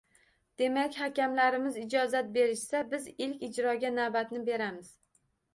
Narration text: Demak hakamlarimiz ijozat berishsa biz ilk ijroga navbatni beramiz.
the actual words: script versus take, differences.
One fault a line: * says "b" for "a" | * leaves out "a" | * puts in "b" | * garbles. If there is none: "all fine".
all fine